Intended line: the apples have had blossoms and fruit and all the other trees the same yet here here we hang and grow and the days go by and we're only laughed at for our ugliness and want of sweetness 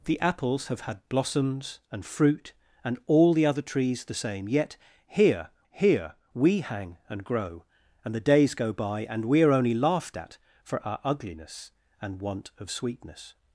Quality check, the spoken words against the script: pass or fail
pass